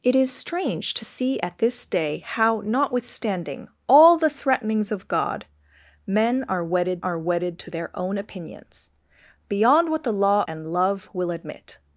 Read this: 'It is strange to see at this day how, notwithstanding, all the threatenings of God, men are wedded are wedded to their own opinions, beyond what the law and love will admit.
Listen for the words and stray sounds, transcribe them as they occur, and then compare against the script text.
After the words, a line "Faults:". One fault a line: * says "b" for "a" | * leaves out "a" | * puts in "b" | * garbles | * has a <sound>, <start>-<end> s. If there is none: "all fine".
'It is strange to see at this day how, notwithstanding, all the threatenings of God, men are wedded are wedded to their own opinions, beyond what the law and love will admit.
Faults:
all fine